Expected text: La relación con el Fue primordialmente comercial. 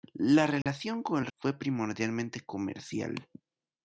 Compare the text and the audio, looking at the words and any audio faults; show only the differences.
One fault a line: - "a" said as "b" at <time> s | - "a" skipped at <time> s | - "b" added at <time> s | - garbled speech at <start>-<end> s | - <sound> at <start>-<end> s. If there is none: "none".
- dropout at 0.6-0.7 s